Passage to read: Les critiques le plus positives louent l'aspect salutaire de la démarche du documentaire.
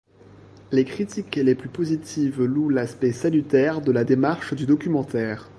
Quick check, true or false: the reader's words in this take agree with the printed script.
false